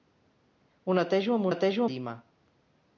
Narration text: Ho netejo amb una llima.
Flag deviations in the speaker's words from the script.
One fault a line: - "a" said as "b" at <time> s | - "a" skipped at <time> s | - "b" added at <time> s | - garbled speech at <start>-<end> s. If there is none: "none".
- "una" said as "netejo" at 1.5 s